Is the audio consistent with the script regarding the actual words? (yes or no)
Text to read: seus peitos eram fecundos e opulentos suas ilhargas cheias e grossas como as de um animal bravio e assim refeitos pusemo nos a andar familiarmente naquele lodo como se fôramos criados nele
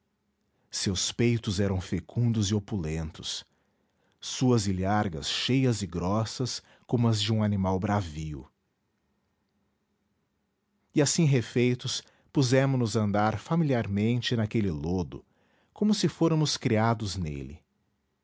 yes